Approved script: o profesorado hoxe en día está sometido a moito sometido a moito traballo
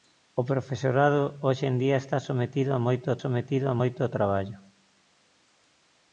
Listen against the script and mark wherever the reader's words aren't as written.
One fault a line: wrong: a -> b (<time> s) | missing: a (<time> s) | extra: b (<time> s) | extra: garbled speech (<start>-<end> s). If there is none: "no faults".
no faults